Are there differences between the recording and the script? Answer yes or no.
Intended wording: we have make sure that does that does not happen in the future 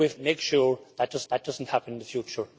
no